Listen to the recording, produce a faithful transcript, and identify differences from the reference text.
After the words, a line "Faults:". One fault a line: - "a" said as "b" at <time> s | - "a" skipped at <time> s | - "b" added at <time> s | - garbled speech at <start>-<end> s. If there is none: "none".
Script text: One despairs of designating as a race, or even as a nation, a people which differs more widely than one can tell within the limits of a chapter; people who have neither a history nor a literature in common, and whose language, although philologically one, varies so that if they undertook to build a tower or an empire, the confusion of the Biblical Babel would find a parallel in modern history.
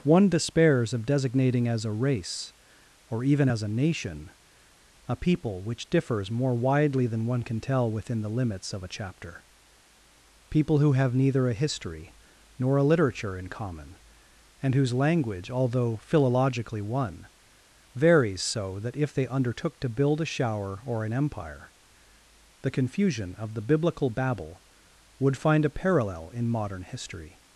One despairs of designating as a race, or even as a nation, a people which differs more widely than one can tell within the limits of a chapter; people who have neither a history nor a literature in common, and whose language, although philologically one, varies so that if they undertook to build a shower or an empire, the confusion of the Biblical Babel would find a parallel in modern history.
Faults:
- "tower" said as "shower" at 20.3 s